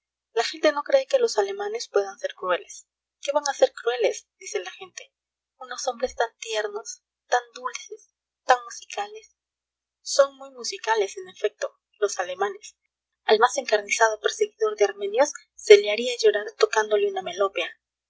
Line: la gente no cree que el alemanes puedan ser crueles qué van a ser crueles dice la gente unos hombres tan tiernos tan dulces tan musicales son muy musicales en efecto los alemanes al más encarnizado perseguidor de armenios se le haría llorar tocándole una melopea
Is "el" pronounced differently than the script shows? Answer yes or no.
yes